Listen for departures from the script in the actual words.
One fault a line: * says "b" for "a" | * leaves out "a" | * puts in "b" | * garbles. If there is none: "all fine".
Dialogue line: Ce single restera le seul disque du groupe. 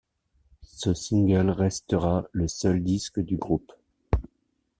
all fine